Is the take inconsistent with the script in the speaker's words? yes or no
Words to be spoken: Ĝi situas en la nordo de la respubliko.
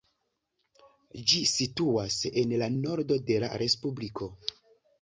no